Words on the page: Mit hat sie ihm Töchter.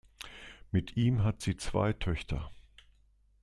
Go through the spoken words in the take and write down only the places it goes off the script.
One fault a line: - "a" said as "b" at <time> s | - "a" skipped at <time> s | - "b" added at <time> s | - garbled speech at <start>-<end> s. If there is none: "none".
- "ihm" added at 0.9 s
- "ihm" said as "zwei" at 1.5 s